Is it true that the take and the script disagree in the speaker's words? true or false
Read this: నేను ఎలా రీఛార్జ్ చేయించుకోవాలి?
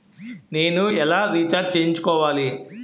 false